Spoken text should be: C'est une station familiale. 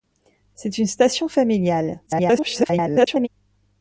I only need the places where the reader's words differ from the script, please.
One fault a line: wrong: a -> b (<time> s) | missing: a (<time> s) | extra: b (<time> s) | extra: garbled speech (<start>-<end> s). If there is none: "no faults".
extra: garbled speech (2.1-3.3 s)